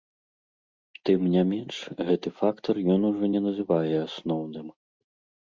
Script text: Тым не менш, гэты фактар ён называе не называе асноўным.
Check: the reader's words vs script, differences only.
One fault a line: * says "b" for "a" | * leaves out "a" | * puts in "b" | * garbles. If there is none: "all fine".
* says "ужо" for "называе"